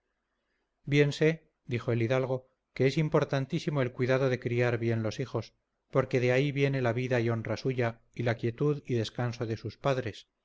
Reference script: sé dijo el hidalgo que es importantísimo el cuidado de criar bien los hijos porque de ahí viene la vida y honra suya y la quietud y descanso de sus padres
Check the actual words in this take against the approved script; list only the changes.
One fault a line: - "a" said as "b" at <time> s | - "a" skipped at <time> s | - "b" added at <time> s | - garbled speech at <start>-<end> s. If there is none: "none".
none